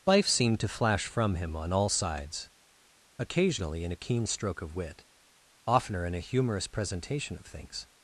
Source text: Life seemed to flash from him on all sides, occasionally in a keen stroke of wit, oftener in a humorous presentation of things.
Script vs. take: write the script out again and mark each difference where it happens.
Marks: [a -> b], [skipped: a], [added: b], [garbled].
Life seemed to flash from him on all sides, occasionally in a keen stroke of wit, oftener in a humorous presentation of things.